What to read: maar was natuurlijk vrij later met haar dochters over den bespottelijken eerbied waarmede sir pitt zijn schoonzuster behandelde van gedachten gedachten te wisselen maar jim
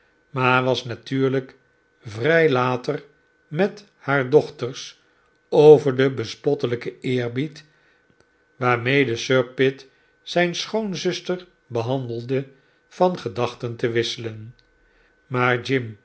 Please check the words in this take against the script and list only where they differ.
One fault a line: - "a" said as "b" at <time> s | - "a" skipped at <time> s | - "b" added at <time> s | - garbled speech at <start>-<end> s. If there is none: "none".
- "gedachten" skipped at 13.8 s